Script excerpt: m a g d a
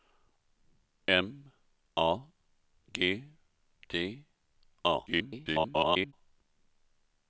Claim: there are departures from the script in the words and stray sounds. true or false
true